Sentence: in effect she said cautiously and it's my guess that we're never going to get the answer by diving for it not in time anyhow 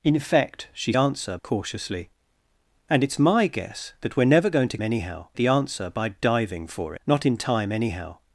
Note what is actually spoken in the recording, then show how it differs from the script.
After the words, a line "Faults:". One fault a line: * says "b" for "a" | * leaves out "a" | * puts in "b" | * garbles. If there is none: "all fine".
in effect she answer cautiously and it's my guess that we're never going to anyhow the answer by diving for not in time anyhow
Faults:
* says "answer" for "said"
* says "anyhow" for "get"
* leaves out "it"